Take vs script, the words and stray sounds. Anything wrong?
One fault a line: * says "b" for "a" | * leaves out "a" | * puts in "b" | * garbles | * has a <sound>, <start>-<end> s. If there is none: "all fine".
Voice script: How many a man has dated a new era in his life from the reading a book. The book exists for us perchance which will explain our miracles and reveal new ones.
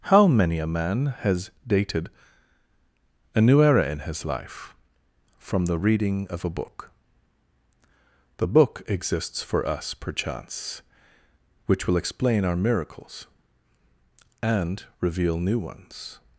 * puts in "of"